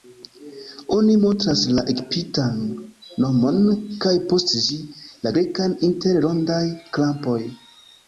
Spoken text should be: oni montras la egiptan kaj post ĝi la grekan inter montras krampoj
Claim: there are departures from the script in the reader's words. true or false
true